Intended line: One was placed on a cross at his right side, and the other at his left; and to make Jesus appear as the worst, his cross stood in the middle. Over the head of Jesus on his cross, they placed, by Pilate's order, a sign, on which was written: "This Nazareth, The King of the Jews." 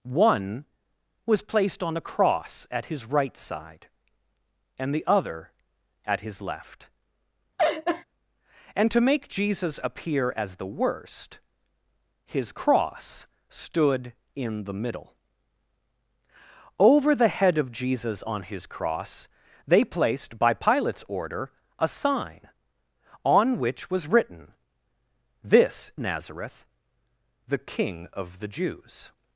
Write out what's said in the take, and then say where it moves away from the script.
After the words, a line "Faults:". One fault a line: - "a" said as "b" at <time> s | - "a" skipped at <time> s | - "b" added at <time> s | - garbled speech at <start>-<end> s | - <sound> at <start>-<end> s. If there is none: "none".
One was placed on a cross at his right side, and the other at his left; and to make Jesus appear as the worst, his cross stood in the middle. Over the head of Jesus on his cross, they placed, by Pilate's order, a sign, on which was written: "This Nazareth, The King of the Jews."
Faults:
- laugh at 7.6-8.0 s